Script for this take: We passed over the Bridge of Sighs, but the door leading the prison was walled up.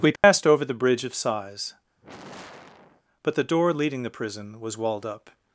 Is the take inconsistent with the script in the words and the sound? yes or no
yes